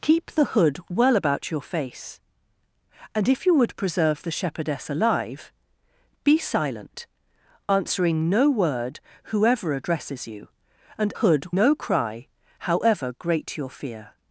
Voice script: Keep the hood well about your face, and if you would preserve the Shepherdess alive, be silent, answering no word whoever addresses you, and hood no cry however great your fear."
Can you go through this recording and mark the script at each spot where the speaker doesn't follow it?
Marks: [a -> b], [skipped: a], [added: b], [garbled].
Keep the hood well about your face, and if you would preserve the Shepherdess alive, be silent, answering no word whoever addresses you, and hood no cry however great your fear."